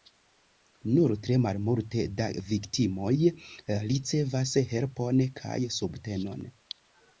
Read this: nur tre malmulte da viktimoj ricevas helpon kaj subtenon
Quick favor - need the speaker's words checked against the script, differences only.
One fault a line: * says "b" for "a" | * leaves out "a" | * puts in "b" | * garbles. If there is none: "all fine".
all fine